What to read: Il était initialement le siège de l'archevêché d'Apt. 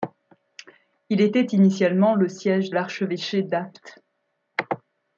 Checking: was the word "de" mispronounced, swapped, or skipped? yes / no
yes